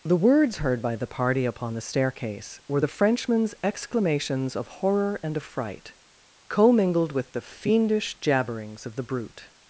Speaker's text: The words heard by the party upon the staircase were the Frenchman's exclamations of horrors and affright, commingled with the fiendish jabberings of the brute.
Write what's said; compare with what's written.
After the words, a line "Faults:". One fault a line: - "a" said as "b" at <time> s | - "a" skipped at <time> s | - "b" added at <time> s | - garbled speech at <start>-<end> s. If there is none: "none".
The words heard by the party upon the staircase were the Frenchman's exclamations of horror and affright, commingled with the fiendish jabberings of the brute.
Faults:
- "horrors" said as "horror" at 4.7 s